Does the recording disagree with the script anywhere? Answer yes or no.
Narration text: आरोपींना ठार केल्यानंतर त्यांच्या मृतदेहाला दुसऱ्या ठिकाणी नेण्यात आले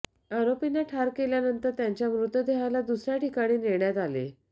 no